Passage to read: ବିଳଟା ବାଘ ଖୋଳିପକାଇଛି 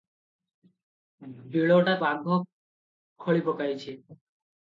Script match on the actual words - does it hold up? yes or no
yes